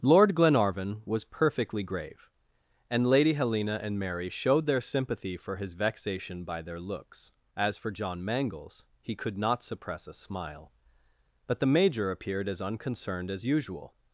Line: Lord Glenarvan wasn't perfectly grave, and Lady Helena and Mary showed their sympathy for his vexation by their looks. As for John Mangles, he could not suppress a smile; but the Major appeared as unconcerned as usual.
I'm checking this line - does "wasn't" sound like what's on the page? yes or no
no